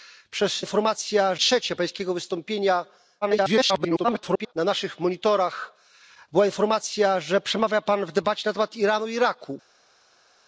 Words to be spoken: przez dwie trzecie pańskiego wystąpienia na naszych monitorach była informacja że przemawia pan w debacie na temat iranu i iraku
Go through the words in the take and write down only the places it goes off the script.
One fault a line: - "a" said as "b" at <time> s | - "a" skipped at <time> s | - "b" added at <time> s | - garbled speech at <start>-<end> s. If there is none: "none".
- "dwie" said as "informacja" at 0.6 s
- garbled speech at 3.2-4.5 s